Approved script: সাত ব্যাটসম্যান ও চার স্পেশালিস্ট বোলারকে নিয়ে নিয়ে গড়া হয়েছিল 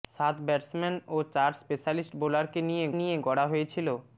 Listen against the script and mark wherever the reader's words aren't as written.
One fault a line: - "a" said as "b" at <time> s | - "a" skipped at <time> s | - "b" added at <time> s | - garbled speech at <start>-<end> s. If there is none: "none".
none